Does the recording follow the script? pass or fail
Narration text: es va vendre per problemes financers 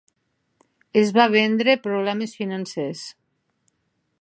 fail